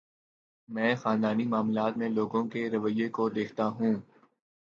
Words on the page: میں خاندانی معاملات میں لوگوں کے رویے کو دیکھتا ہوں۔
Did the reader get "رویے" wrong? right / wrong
right